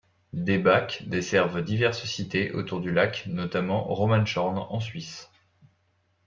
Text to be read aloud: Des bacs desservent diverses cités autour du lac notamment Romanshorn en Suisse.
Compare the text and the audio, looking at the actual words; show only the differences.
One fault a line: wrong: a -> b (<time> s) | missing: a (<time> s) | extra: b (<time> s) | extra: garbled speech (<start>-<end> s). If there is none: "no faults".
no faults